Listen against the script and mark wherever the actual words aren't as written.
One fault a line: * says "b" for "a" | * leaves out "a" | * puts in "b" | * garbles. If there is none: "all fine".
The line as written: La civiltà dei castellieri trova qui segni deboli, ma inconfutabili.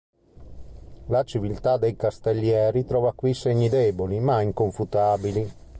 all fine